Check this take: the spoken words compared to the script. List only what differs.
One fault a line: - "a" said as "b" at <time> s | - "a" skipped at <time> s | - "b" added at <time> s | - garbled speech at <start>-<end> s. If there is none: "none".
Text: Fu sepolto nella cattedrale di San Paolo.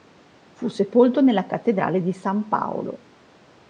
none